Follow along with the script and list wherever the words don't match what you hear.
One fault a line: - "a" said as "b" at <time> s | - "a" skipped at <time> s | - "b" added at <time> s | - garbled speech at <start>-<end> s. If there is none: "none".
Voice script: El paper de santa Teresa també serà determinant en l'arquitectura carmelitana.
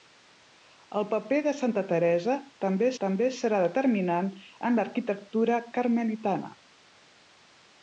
- "també" added at 3.0 s